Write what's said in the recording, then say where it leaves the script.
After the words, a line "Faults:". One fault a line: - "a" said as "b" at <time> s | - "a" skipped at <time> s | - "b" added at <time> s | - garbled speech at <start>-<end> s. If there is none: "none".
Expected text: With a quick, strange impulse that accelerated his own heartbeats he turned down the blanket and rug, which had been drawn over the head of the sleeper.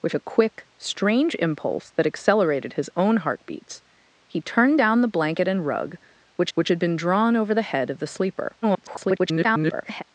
With a quick, strange impulse that accelerated his own heartbeats he turned down the blanket and rug, which which had been drawn over the head of the sleeper. [garbled]
Faults:
- "which" added at 6.5 s
- garbled speech at 8.6-10.0 s